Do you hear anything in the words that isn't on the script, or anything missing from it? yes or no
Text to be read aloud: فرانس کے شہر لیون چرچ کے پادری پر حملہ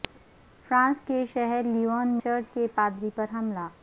no